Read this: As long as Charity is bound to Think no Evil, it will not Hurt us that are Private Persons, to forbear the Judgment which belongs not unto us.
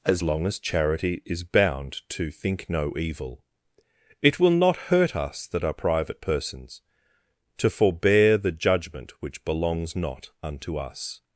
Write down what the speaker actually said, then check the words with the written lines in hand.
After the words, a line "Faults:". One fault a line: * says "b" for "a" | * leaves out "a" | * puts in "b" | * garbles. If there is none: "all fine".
As long as Charity is bound to Think no Evil, it will not Hurt us that are Private Persons, to forbear the Judgment which belongs not unto us.
Faults:
all fine